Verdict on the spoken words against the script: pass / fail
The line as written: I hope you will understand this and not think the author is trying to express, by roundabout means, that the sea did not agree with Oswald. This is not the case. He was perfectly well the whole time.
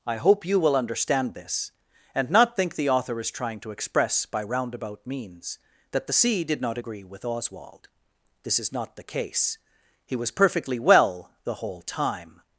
pass